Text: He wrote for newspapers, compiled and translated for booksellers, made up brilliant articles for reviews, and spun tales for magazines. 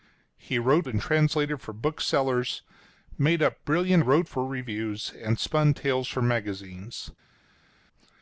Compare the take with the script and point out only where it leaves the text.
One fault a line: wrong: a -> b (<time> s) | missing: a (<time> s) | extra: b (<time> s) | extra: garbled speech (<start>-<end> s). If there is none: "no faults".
missing: for newspapers compiled (0.9 s)
wrong: articles -> wrote (4.0 s)